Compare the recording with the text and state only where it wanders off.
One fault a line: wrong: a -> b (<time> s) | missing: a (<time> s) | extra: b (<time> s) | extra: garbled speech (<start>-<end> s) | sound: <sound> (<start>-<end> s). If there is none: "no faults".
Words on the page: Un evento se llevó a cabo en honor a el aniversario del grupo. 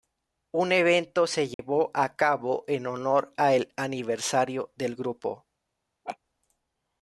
sound: dropout (1.5-1.6 s)
sound: laugh (6.0-6.2 s)